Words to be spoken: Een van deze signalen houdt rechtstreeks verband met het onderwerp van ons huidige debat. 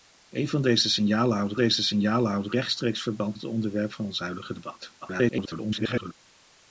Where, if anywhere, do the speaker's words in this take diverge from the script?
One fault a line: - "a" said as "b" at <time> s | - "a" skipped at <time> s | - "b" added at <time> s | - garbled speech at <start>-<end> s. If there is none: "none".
- "deze signalen houdt" added at 1.5 s
- "met" skipped at 3.4 s
- garbled speech at 5.0-6.1 s